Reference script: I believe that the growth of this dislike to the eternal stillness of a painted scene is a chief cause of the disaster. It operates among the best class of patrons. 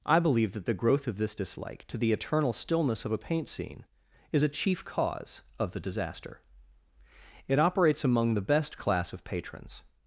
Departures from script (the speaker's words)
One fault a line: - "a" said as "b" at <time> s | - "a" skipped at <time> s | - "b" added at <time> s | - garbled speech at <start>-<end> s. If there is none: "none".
- "painted" said as "paint" at 3.2 s